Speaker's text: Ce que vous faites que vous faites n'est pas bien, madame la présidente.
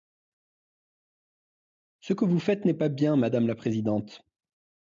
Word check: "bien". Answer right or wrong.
right